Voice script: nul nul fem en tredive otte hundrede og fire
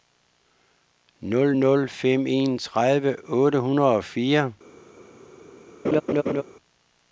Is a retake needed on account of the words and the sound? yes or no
yes